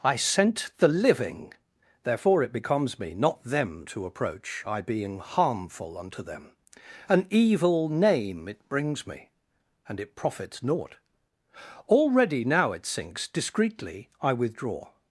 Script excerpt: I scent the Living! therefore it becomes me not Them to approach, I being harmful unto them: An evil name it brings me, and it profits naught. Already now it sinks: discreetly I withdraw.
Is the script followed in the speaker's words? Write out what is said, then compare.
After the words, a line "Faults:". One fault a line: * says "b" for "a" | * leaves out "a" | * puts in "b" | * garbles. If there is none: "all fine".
I scent the Living! therefore it becomes me not Them to approach, I being harmful unto them: An evil name it brings me, and it profits naught. Already now it sinks: discreetly I withdraw.
Faults:
all fine